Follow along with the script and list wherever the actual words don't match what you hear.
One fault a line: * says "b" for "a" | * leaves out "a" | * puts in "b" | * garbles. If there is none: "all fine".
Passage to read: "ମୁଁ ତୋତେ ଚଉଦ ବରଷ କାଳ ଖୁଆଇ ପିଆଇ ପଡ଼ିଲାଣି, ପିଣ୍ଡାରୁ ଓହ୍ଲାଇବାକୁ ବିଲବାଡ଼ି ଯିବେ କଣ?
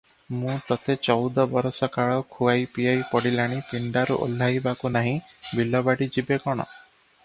* puts in "ନାହିଁ"